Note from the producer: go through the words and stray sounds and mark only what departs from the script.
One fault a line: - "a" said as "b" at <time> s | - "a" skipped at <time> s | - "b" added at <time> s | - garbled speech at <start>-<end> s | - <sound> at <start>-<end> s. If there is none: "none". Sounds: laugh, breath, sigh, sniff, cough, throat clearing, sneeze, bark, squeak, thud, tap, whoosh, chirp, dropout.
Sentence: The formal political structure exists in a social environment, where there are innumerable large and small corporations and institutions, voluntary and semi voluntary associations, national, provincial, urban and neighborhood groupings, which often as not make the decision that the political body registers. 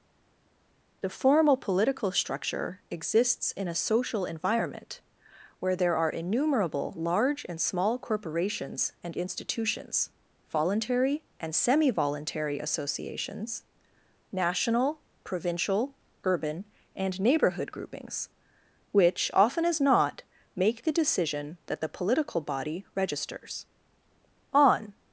- "On" added at 24.5 s